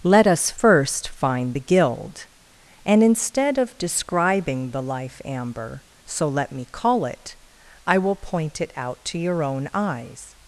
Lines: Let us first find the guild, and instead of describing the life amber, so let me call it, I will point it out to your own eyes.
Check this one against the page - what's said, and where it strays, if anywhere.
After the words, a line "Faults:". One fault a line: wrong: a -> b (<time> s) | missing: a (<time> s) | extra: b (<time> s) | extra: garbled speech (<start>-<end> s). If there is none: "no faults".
Let us first find the guild, and instead of describing the life amber, so let me call it, I will point it out to your own eyes.
Faults:
no faults